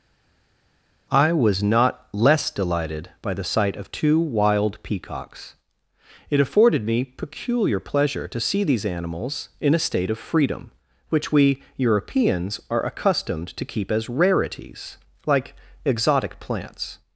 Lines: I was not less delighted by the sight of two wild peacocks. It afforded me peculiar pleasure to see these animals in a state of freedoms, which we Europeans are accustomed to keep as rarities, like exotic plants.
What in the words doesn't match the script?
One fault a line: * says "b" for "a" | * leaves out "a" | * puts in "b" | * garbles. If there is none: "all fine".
* says "freedom" for "freedoms"